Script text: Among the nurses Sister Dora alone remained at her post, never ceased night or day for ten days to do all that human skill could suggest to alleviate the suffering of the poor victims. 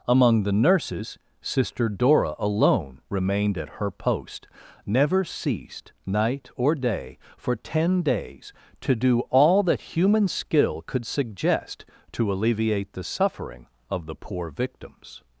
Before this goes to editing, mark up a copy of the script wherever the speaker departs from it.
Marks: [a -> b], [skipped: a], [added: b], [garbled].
Among the nurses Sister Dora alone remained at her post, never ceased night or day for ten days to do all that human skill could suggest to alleviate the suffering of the poor victims.